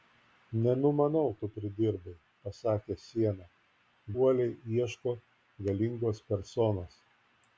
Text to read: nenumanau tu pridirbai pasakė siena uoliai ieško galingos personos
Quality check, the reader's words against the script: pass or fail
pass